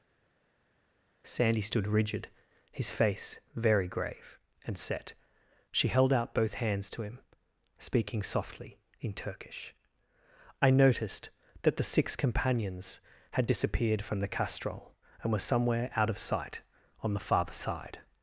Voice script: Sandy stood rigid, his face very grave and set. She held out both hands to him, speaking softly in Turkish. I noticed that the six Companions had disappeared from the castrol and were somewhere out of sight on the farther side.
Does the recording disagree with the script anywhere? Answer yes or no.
no